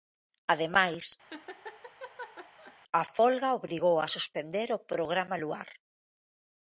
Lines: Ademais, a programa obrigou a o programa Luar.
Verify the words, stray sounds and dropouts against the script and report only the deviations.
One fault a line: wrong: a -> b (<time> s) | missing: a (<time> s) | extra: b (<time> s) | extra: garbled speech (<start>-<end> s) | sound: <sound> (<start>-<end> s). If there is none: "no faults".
sound: laugh (1.3-2.8 s)
wrong: programa -> folga (3.2 s)
extra: suspender (4.1 s)